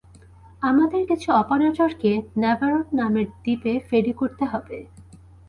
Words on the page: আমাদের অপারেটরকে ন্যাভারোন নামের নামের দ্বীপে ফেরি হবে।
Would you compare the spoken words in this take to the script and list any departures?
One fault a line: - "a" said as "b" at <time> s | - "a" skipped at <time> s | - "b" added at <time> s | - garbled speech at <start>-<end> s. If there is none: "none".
- "কিছু" added at 1.1 s
- "নামের" skipped at 3.3 s
- "করতে" added at 4.2 s